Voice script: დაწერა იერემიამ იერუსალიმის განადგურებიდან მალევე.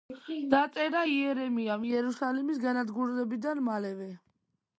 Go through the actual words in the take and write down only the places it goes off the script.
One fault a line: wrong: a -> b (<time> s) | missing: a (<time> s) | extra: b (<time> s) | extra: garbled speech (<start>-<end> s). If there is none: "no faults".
no faults